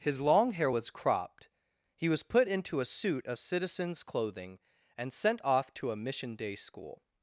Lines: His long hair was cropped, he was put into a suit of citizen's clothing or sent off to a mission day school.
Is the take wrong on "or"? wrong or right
wrong